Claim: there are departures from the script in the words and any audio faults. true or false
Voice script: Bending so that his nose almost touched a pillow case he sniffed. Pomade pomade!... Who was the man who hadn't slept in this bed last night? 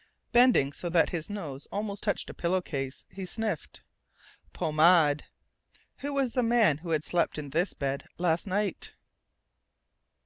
true